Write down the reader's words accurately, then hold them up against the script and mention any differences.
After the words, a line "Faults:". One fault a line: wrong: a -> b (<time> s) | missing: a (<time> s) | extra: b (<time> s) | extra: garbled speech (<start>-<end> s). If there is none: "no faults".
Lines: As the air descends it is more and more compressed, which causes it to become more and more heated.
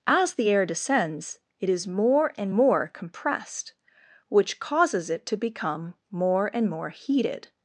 As the air descends it is more and more compressed, which causes it to become more and more heated.
Faults:
no faults